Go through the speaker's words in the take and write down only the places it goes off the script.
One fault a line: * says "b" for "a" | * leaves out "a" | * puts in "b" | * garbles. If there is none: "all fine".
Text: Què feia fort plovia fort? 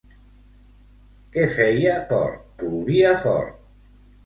all fine